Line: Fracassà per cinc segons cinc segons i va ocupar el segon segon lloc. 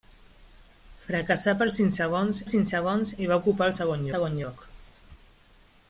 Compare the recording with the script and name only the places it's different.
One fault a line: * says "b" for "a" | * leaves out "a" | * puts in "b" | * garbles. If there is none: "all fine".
all fine